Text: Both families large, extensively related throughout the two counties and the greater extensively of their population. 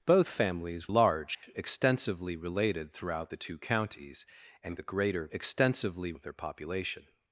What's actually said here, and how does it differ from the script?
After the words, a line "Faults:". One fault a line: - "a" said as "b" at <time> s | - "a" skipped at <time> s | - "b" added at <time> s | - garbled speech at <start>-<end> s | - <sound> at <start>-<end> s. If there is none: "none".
Both families large, extensively related throughout the two counties and the greater extensively of their population.
Faults:
- dropout at 1.3-1.4 s